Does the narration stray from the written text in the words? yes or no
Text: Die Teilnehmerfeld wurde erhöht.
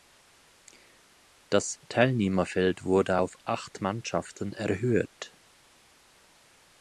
yes